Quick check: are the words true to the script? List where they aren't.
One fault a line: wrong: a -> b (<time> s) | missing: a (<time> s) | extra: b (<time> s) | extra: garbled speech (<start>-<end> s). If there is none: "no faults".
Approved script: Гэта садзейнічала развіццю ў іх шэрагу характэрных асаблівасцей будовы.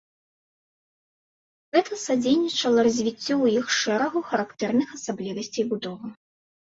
no faults